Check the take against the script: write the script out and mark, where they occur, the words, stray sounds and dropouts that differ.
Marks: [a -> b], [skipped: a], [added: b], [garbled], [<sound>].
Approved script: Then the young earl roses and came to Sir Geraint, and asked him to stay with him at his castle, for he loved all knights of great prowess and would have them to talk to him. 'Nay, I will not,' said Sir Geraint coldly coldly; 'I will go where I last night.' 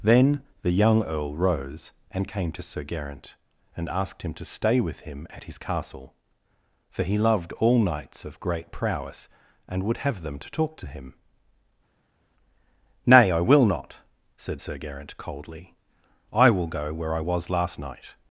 Then the young earl [roses -> rose] and came to Sir Geraint, and asked him to stay with him at his castle, for he loved all knights of great prowess and would have them to talk to him. 'Nay, I will not,' said Sir Geraint coldly [skipped: coldly;] 'I will go where I [added: was] last night.'